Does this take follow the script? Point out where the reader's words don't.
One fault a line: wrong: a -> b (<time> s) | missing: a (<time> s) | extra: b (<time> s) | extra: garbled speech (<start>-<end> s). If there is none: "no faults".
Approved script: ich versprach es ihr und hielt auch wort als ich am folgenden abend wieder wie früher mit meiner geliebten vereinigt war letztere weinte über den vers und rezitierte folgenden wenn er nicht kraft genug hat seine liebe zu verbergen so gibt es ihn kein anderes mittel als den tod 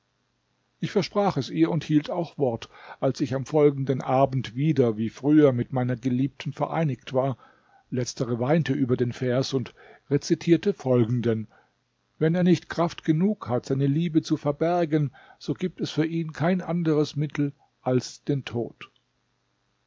extra: für (15.9 s)